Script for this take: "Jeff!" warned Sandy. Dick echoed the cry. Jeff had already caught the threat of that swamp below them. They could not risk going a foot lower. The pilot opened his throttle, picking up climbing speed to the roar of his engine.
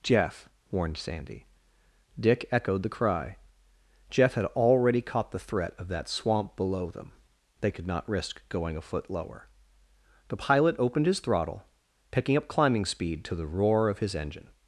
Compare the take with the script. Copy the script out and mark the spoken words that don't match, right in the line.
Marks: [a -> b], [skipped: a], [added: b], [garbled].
"Jeff!" warned Sandy. Dick echoed the cry. Jeff had already caught the threat of that swamp below them. They could not risk going a foot lower. The pilot opened his throttle, picking up climbing speed to the roar of his engine.